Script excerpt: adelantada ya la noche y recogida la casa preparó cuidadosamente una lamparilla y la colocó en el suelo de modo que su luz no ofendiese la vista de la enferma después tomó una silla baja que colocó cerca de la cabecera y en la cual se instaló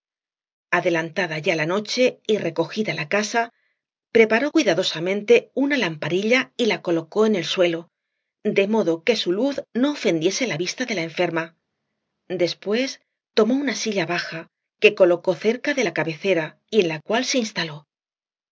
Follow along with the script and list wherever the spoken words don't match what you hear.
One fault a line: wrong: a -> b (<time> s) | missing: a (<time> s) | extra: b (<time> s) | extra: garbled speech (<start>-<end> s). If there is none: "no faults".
no faults